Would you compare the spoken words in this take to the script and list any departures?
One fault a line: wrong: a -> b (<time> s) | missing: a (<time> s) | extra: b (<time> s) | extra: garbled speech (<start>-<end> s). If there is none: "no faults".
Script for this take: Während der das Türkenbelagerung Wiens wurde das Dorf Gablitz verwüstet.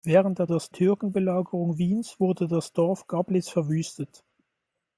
no faults